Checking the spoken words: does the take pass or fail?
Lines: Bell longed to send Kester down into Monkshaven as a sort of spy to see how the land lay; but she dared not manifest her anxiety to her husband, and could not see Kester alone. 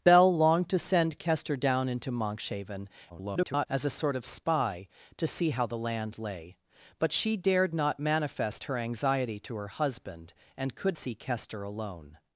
fail